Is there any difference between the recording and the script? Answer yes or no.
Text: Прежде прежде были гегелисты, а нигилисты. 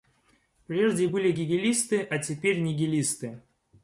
yes